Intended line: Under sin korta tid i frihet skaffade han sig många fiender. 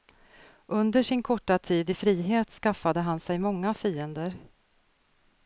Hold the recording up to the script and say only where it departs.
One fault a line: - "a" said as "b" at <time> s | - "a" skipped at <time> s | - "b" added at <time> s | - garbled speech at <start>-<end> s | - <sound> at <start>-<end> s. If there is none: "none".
none